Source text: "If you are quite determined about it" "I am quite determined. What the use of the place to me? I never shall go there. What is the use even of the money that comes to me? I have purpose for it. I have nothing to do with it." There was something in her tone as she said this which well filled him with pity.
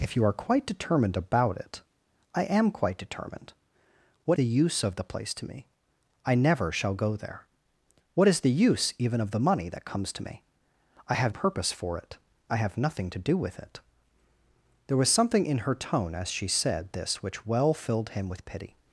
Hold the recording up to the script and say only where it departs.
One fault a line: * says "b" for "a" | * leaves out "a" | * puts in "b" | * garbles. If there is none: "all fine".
all fine